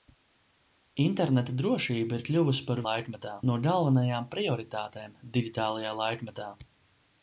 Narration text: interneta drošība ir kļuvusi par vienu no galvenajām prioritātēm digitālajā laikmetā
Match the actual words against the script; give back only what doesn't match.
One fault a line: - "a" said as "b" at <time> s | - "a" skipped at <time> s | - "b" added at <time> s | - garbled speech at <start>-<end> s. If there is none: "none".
- "vienu" said as "laikmetā" at 2.9 s